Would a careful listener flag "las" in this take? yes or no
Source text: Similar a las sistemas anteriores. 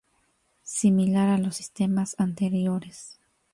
yes